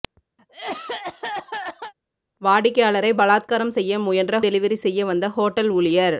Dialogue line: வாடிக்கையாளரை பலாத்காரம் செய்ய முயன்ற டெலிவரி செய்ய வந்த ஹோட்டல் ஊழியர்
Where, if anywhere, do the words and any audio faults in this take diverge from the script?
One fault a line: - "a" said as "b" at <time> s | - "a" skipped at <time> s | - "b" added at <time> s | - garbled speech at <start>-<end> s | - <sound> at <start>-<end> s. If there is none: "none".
- cough at 0.4-1.9 s